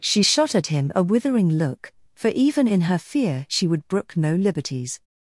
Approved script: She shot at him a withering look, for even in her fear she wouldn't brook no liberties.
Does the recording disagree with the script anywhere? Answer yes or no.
yes